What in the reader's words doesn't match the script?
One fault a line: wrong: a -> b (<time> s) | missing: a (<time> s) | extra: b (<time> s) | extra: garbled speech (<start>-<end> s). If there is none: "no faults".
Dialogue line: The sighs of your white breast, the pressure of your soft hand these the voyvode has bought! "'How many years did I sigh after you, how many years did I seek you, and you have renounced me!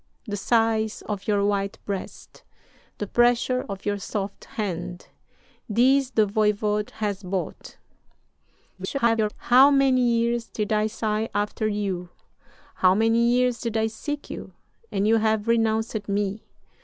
extra: garbled speech (8.8-9.3 s)